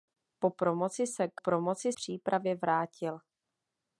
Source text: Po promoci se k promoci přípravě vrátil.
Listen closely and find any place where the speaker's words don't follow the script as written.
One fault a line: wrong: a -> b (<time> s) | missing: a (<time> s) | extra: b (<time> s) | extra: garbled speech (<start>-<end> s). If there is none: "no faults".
no faults